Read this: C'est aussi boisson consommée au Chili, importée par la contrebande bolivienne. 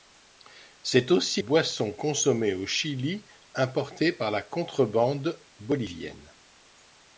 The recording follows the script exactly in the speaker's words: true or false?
true